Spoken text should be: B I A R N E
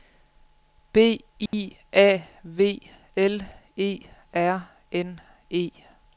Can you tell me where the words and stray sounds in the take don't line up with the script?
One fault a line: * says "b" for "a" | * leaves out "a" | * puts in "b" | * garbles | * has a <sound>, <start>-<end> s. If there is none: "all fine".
* has a dropout, 1.5-1.5 s
* puts in "V L E"